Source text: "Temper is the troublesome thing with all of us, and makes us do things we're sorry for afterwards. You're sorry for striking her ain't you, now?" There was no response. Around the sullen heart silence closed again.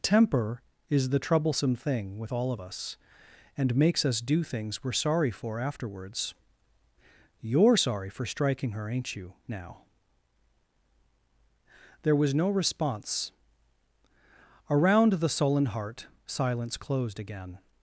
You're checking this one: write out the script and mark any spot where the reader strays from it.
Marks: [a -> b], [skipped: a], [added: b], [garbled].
"Temper is the troublesome thing with all of us, and makes us do things we're sorry for afterwards. You're sorry for striking her ain't you, now?" There was no response. Around the sullen heart silence closed again.